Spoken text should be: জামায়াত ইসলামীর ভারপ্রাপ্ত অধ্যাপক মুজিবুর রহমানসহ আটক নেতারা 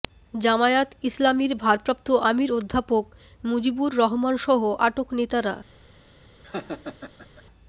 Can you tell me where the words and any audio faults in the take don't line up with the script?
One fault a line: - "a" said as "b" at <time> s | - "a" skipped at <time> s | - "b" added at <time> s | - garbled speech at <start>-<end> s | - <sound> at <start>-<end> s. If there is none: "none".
- "আমির" added at 2.3 s
- laugh at 6.4-7.4 s